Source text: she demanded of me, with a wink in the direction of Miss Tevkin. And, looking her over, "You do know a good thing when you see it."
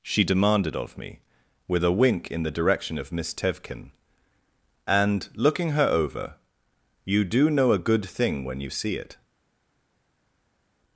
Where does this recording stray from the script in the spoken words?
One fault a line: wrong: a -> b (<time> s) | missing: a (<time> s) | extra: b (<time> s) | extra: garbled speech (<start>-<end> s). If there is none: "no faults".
no faults